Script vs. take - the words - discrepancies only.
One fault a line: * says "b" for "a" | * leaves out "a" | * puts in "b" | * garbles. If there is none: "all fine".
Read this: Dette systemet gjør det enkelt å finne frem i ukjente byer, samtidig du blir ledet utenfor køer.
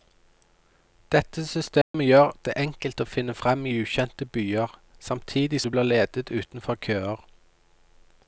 all fine